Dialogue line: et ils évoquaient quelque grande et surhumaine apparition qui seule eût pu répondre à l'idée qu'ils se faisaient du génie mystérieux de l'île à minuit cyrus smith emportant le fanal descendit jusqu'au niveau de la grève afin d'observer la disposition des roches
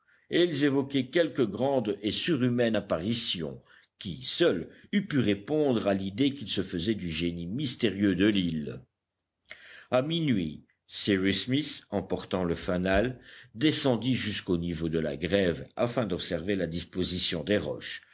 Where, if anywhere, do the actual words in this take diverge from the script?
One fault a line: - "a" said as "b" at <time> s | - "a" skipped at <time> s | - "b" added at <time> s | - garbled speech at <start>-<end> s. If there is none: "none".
none